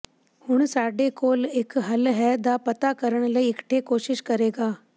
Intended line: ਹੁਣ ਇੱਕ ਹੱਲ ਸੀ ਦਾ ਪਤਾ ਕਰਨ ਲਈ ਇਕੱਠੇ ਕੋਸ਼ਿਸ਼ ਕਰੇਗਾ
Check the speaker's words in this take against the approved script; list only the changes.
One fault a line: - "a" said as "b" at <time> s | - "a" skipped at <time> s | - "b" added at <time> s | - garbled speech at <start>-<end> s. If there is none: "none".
- "ਸਾਡੇ ਕੋਲ" added at 0.7 s
- "ਸੀ" said as "ਹੈ" at 2.1 s